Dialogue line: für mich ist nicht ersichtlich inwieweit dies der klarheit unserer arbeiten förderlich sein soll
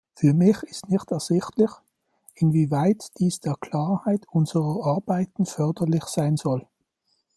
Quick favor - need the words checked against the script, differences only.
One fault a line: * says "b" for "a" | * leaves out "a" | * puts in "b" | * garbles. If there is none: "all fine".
all fine